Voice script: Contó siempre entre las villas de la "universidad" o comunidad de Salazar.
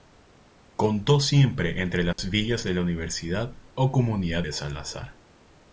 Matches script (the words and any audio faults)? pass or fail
fail